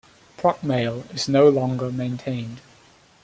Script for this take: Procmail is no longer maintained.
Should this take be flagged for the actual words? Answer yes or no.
no